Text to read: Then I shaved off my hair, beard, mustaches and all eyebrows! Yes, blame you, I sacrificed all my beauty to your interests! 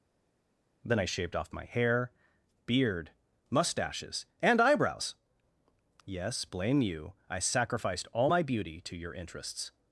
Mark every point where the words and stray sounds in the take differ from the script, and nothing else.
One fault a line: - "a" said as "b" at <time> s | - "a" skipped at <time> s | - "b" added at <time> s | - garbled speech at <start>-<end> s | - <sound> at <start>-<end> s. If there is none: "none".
- "all" skipped at 4.6 s